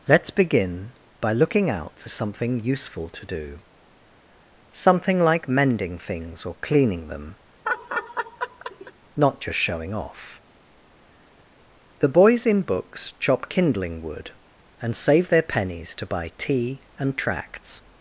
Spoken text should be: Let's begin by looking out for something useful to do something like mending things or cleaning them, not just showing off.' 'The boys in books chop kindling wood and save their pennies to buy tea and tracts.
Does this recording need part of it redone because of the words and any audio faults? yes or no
yes